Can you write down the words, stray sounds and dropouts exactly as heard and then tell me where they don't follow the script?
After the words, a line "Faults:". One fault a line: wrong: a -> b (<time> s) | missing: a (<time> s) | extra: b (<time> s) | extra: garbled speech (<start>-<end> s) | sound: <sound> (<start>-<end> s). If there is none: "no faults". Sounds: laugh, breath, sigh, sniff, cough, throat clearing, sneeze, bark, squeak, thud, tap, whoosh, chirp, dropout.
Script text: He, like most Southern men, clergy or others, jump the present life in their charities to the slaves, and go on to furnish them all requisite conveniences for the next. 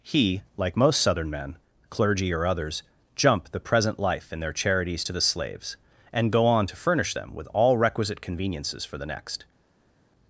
He, like most Southern men, clergy or others, jump the present life in their charities to the slaves, and go on to furnish them with all requisite conveniences for the next.
Faults:
extra: with (7.3 s)